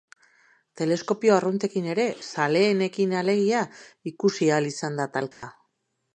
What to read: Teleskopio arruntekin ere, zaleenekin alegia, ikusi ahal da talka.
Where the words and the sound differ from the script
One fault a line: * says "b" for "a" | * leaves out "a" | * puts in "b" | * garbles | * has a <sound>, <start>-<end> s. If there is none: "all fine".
* puts in "izan"
* has a dropout, 5.3-5.4 s